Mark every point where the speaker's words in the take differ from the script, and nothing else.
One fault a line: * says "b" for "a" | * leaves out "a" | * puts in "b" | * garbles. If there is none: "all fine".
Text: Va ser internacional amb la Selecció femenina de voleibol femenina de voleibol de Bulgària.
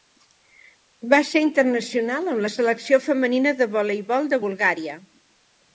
* leaves out "femenina de voleibol"